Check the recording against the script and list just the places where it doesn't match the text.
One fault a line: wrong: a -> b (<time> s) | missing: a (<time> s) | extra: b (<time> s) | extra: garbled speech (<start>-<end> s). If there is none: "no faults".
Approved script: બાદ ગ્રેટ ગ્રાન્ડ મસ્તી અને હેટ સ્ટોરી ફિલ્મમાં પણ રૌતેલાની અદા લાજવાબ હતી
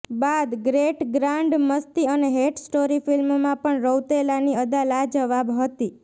no faults